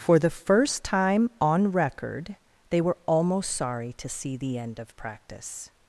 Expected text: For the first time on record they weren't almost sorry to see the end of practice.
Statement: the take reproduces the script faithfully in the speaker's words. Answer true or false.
false